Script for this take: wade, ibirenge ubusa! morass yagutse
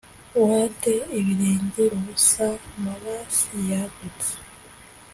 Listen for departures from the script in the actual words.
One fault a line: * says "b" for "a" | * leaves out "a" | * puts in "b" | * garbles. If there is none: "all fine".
all fine